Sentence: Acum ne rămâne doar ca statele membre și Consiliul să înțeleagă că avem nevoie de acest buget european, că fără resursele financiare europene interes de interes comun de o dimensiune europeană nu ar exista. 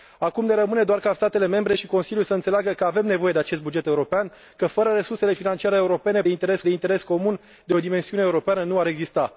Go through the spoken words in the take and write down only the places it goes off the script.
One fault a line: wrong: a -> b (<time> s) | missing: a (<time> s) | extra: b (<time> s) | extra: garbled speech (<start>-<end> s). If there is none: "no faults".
no faults